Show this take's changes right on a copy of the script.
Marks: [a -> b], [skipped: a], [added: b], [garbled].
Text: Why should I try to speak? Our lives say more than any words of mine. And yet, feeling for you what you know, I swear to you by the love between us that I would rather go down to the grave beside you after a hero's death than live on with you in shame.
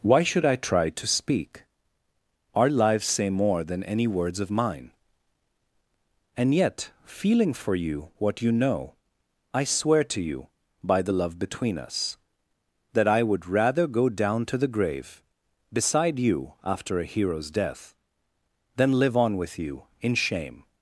Why should I try to speak? Our lives say more than any words of mine. And yet, feeling for you what you know, I swear to you by the love between us that I would rather go down to the grave beside you after a hero's death than live on with you in shame.